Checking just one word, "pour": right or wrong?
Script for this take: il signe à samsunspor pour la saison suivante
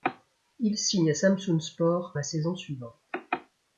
wrong